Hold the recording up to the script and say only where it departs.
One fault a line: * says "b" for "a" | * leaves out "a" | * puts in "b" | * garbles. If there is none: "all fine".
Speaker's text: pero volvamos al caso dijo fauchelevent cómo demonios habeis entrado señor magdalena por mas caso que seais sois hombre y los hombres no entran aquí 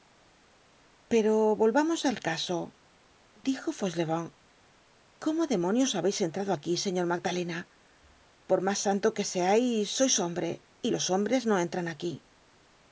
* puts in "aquí"
* says "santo" for "caso"